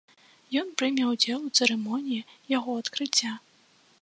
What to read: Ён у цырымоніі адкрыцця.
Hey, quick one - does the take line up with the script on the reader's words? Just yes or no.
no